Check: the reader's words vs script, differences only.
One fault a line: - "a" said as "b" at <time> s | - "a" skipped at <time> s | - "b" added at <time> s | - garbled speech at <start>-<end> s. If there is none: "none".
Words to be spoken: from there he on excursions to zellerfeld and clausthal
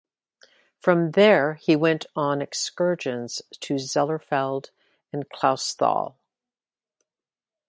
- "went" added at 1.8 s